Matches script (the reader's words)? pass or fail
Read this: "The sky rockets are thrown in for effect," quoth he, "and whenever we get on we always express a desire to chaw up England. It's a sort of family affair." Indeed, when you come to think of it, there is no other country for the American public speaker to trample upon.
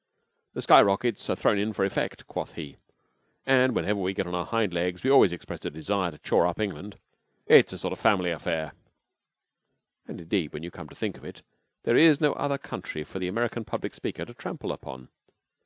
fail